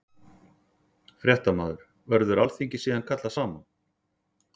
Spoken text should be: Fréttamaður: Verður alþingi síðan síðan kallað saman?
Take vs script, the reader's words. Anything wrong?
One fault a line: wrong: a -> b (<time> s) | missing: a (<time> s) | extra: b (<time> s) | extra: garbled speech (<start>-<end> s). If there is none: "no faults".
missing: síðan (3.0 s)